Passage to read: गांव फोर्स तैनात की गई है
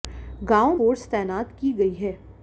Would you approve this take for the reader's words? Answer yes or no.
yes